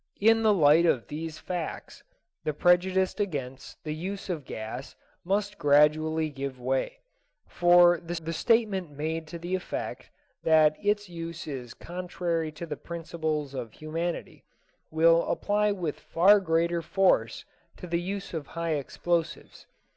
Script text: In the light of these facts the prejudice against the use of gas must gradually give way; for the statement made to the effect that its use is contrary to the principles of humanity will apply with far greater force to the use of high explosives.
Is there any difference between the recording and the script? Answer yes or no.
yes